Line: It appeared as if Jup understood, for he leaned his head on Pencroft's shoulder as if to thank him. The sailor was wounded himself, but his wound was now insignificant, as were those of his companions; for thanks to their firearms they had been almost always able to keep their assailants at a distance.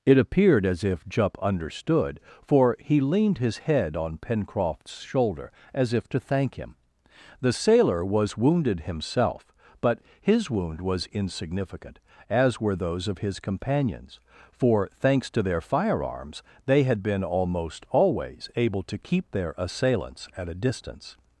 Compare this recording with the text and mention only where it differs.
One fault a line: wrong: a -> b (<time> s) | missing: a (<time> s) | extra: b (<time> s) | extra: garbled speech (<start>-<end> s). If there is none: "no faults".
missing: now (11.1 s)